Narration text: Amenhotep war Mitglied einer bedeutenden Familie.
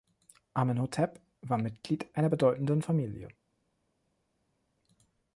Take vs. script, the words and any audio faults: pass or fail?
pass